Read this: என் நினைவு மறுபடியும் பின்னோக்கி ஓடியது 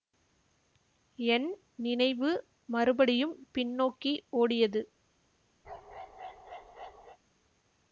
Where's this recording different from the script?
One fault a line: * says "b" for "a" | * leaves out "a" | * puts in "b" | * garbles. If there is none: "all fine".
all fine